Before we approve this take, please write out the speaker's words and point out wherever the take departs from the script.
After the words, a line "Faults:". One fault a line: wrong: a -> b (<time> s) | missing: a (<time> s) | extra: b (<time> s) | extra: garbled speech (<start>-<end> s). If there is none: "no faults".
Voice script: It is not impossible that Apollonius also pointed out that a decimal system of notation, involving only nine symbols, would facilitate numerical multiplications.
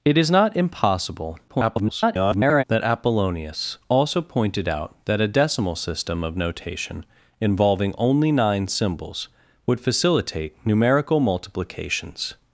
It is not impossible [garbled] that Apollonius also pointed out that a decimal system of notation, involving only nine symbols, would facilitate numerical multiplications.
Faults:
extra: garbled speech (1.5-2.6 s)